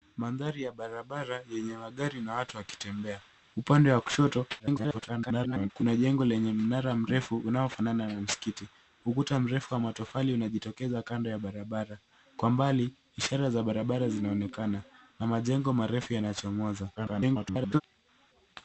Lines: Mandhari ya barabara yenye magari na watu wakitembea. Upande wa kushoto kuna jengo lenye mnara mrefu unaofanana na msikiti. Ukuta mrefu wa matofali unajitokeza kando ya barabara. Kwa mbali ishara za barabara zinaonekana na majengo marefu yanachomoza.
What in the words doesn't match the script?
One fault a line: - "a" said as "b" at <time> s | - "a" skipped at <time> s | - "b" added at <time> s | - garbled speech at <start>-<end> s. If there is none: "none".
- garbled speech at 4.6-5.7 s
- garbled speech at 17.0-17.8 s